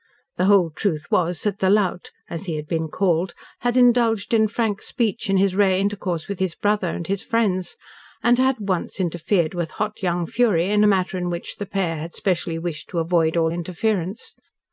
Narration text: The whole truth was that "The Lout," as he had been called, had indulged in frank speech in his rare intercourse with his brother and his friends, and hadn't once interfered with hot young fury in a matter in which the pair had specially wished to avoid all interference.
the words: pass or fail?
fail